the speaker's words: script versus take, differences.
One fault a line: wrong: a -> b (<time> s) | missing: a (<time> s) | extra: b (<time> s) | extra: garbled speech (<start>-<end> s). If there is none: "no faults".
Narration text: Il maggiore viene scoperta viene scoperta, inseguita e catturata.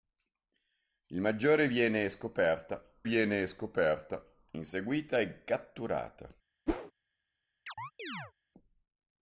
no faults